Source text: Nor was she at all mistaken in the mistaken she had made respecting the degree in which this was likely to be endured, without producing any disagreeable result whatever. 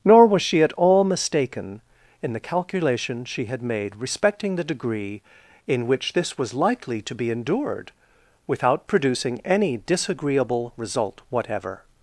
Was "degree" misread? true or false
false